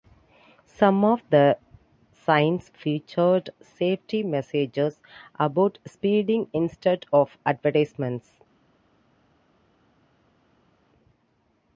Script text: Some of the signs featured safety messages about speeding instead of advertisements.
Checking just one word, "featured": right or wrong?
right